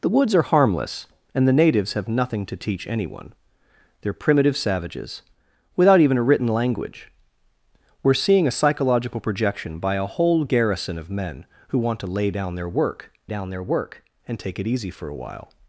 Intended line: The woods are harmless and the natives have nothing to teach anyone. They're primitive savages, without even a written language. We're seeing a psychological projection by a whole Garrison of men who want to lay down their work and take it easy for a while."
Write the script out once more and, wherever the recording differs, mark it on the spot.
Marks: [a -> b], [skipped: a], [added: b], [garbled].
The woods are harmless and the natives have nothing to teach anyone. They're primitive savages, without even a written language. We're seeing a psychological projection by a whole Garrison of men who want to lay down their work [added: down their work] and take it easy for a while."